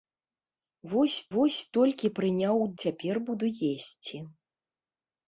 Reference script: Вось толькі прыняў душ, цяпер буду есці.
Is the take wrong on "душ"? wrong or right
wrong